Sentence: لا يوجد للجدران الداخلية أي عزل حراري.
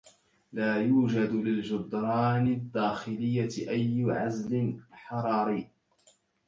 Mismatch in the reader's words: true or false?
false